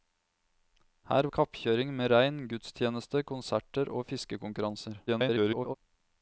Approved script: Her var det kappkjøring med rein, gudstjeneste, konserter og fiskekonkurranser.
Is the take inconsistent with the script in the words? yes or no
yes